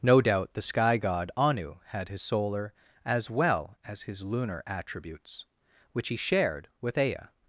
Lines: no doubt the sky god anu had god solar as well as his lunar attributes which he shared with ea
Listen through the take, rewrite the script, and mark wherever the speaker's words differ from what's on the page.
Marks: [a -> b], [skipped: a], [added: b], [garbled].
no doubt the sky god anu had [god -> his] solar as well as his lunar attributes which he shared with ea